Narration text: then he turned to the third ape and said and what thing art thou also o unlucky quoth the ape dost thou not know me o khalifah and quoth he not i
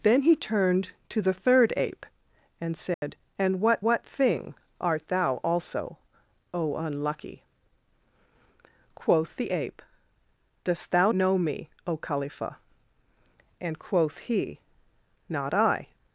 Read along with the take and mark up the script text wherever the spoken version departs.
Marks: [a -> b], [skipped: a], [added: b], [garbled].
then he turned to the third ape and said and what [added: what] thing art thou also o unlucky quoth the ape dost thou [skipped: not] know me o khalifah and quoth he not i